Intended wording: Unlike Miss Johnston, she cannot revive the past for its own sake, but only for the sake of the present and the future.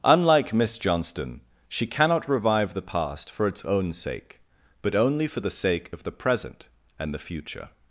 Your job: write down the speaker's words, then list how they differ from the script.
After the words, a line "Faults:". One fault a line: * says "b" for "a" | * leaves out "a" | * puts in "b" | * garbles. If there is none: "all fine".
Unlike Miss Johnston, she cannot revive the past for its own sake, but only for the sake of the present and the future.
Faults:
all fine